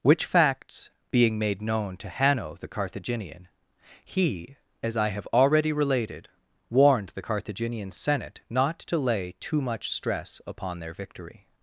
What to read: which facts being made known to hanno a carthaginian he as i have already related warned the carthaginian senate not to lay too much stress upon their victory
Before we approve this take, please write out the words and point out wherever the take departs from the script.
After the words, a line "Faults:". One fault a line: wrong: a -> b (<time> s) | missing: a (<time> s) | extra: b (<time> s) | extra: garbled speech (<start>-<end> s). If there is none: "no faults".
which facts being made known to hanno the carthaginian he as i have already related warned the carthaginian senate not to lay too much stress upon their victory
Faults:
wrong: a -> the (2.5 s)